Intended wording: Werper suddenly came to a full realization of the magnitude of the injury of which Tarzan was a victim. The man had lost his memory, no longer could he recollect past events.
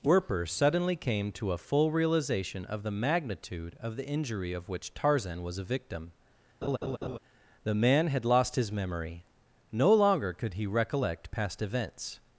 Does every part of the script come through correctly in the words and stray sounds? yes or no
no